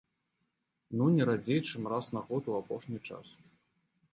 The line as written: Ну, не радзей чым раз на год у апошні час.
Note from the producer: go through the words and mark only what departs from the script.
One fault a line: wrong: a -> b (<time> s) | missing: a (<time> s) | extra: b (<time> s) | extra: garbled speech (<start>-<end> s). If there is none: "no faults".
no faults